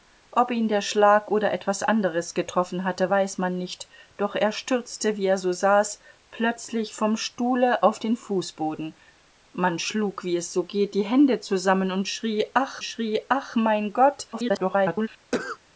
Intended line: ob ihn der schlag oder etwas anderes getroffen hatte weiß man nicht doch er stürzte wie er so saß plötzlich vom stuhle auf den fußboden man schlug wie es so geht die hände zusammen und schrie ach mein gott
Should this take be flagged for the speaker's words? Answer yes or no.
yes